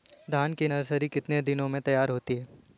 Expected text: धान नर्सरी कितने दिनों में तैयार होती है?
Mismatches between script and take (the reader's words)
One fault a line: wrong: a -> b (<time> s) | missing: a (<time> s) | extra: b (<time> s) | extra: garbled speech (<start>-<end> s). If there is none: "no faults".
extra: की (0.5 s)